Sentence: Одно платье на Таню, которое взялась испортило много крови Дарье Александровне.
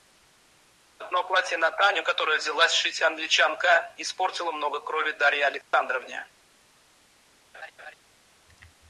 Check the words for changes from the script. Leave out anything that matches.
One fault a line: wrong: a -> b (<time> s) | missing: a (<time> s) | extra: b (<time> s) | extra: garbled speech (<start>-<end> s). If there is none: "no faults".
extra: шить Англичанка (2.7 s)